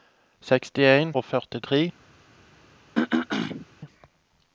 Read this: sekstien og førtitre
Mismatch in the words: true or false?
false